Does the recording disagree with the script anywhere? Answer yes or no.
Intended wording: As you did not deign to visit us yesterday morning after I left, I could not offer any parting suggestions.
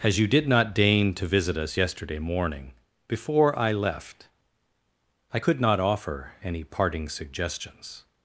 yes